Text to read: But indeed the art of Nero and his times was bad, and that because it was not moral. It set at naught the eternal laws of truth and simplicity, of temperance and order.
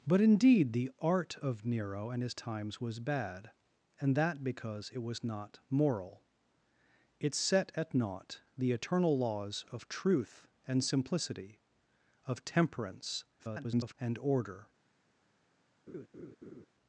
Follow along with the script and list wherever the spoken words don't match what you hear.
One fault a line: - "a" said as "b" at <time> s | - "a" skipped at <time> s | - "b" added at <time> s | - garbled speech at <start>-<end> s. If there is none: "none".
- garbled speech at 13.4-14.0 s